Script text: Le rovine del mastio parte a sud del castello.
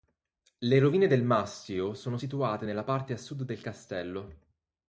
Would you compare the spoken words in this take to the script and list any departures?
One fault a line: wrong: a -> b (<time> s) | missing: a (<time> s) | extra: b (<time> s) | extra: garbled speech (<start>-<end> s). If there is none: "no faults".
extra: sono situate nella (1.9 s)